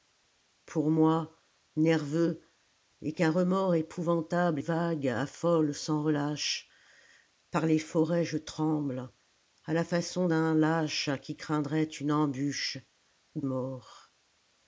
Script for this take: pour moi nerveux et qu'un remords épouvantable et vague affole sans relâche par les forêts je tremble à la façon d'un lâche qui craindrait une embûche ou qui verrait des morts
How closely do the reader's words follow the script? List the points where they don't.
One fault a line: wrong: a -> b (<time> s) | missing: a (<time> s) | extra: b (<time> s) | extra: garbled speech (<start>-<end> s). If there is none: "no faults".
missing: et (4.6 s)
missing: qui verrait des (13.4 s)